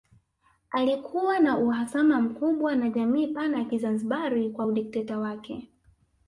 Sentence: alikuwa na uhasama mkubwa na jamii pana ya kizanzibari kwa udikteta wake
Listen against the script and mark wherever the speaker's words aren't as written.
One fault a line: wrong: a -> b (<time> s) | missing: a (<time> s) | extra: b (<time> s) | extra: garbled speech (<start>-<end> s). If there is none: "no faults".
no faults